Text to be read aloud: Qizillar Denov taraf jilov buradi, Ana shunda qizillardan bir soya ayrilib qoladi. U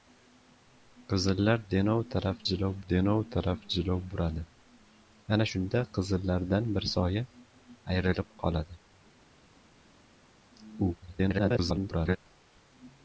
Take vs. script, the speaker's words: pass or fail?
fail